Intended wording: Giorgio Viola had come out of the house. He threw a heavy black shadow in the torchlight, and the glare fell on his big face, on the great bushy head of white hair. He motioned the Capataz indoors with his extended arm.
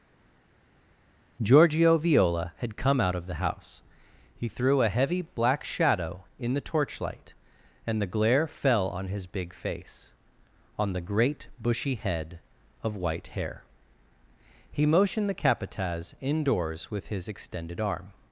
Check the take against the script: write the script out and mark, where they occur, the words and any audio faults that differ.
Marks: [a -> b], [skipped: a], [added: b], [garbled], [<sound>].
Giorgio Viola had come out of the house. He threw a heavy black shadow in the torchlight, and the glare fell on his big face, on the great bushy head of white hair. He motioned the Capataz indoors with his extended arm.